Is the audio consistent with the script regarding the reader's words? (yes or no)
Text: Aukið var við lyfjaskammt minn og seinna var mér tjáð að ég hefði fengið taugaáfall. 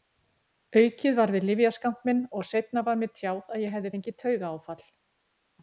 yes